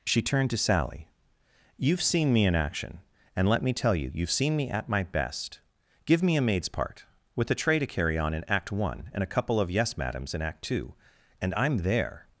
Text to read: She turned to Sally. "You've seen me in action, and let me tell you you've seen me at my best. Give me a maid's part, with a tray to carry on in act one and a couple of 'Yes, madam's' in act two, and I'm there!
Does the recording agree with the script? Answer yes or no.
yes